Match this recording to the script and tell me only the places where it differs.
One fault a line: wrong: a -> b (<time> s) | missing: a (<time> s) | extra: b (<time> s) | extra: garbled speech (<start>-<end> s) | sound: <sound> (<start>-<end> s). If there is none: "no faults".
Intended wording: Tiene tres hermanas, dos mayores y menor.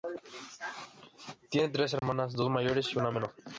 sound: dropout (2.0-2.0 s)
extra: una (3.0 s)